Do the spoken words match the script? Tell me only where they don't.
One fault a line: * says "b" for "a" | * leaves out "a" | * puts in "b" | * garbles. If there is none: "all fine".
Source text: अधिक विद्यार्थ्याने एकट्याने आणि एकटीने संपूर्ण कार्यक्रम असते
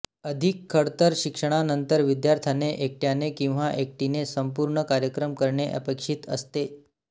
* puts in "खडतर शिक्षणानंतर"
* says "किंवा" for "आणि"
* puts in "करणे अपेक्षित"